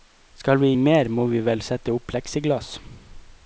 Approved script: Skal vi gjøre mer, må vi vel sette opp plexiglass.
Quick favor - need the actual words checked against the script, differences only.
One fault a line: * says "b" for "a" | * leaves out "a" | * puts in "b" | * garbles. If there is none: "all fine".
* leaves out "gjøre"